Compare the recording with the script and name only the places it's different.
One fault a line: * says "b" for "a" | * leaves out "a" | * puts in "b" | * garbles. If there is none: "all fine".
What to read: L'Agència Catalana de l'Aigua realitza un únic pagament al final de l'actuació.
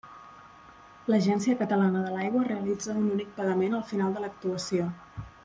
all fine